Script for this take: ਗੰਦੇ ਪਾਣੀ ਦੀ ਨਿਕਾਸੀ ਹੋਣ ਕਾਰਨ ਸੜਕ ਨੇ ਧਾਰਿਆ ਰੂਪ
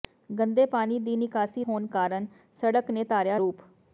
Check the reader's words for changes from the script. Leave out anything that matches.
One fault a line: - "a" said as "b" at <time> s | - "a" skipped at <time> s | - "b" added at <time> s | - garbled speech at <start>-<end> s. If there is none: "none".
none